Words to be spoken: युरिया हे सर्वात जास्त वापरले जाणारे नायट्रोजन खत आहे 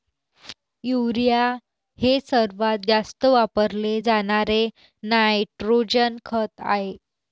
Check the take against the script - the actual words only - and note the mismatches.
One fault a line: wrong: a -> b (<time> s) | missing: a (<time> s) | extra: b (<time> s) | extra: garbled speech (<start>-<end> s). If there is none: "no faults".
no faults